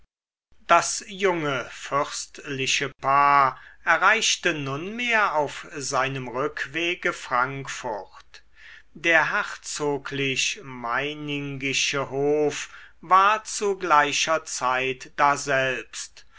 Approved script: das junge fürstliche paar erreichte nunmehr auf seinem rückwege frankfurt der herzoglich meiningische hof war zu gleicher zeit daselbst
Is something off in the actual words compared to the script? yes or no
no